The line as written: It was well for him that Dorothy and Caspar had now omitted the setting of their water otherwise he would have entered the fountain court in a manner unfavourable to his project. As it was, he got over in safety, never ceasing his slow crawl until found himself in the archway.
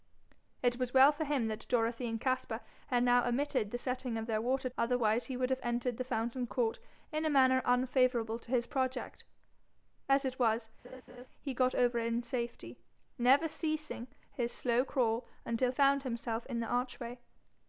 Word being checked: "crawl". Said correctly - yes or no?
yes